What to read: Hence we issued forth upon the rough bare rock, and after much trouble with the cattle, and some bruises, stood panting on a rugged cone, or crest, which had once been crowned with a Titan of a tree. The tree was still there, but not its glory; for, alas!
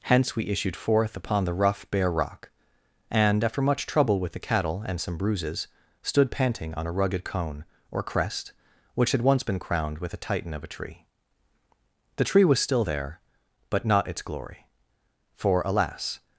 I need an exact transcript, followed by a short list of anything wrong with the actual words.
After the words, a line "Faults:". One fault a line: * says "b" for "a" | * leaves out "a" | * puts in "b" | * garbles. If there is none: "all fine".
Hence we issued forth upon the rough bare rock, and after much trouble with the cattle, and some bruises, stood panting on a rugged cone, or crest, which had once been crowned with a Titan of a tree. The tree was still there, but not its glory; for, alas!
Faults:
all fine